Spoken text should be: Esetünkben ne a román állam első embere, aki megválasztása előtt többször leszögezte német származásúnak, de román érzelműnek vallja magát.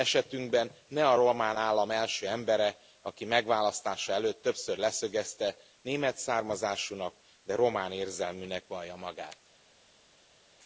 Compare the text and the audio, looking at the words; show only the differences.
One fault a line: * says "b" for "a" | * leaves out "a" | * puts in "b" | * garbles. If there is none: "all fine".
all fine